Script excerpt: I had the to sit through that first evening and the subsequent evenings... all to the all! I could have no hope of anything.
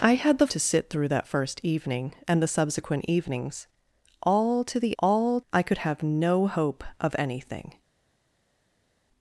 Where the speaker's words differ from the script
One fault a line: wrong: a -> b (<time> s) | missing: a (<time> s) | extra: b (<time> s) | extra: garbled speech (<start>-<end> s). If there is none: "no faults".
no faults